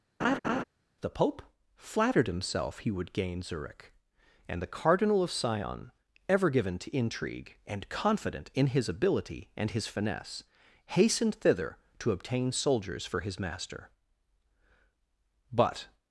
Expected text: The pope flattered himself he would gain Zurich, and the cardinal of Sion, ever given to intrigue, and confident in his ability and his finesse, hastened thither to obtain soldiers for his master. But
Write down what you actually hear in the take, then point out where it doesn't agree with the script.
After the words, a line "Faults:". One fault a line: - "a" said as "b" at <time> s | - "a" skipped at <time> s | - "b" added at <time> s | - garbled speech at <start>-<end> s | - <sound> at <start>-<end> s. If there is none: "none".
The pope flattered himself he would gain Zurich, and the cardinal of Sion, ever given to intrigue, and confident in his ability and his finesse, hastened thither to obtain soldiers for his master. But
Faults:
- laugh at 0.2-0.6 s